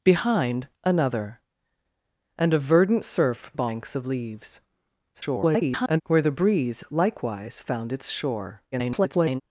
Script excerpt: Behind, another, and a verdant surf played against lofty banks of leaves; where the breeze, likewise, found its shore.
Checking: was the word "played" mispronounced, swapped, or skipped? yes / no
yes